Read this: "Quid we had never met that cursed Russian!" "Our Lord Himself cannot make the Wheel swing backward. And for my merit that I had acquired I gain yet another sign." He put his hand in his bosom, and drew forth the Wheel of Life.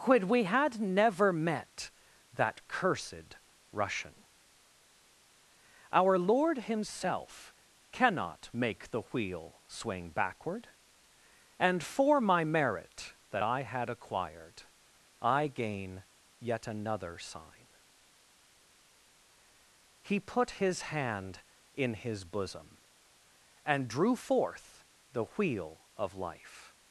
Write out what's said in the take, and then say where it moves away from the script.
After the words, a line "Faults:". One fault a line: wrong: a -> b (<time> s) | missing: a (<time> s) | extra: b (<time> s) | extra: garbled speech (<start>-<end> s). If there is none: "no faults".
"Quid we had never met that cursed Russian!" "Our Lord Himself cannot make the Wheel swing backward. And for my merit that I had acquired I gain yet another sign." He put his hand in his bosom, and drew forth the Wheel of Life.
Faults:
no faults